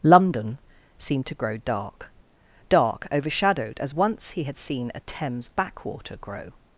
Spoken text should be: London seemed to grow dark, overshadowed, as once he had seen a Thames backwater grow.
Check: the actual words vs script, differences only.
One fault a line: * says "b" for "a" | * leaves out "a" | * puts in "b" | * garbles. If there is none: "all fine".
* puts in "dark"